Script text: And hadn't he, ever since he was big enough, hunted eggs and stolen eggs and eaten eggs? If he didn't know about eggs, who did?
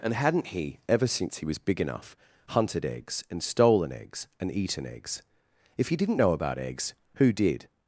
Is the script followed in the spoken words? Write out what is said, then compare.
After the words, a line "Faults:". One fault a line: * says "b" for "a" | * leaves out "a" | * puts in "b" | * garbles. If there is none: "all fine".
And hadn't he, ever since he was big enough, hunted eggs and stolen eggs and eaten eggs? If he didn't know about eggs, who did?
Faults:
all fine